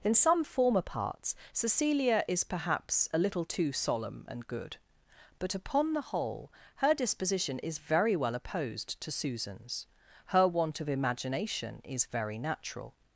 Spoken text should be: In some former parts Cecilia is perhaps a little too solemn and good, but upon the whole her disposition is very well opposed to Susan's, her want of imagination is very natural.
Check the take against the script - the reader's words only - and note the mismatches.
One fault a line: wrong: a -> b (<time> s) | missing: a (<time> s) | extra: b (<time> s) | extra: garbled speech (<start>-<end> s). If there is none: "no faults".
no faults